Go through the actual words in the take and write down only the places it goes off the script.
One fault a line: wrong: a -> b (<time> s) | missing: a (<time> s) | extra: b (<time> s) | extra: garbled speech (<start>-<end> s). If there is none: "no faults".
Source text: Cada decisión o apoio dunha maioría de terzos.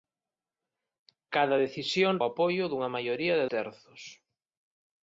no faults